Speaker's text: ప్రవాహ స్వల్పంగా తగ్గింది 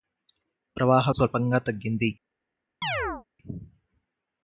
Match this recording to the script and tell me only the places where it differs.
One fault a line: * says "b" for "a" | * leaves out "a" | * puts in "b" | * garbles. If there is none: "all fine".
all fine